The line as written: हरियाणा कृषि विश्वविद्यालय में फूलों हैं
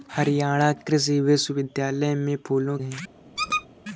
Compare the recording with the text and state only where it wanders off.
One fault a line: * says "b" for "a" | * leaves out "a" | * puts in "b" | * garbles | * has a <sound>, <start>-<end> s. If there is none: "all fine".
* has a squeak, 3.4-3.7 s